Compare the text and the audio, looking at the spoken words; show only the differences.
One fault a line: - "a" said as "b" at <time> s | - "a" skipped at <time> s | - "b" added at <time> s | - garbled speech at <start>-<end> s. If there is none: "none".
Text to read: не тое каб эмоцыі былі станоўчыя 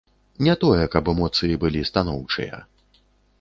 none